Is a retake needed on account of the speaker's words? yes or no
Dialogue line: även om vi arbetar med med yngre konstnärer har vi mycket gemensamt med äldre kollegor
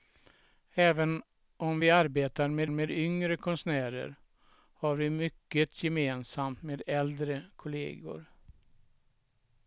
no